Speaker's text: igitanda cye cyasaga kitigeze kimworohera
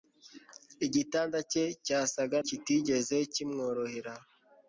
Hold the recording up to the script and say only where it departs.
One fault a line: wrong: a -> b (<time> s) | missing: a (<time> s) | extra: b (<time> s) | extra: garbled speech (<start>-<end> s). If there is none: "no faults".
no faults